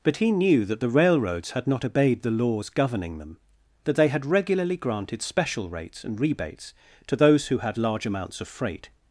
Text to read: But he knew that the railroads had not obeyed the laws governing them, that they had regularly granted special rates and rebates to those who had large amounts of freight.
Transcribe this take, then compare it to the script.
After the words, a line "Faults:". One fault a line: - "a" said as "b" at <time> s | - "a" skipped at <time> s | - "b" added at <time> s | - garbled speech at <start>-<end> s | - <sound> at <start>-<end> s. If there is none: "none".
But he knew that the railroads had not obeyed the laws governing them, that they had regularly granted special rates and rebates to those who had large amounts of freight.
Faults:
none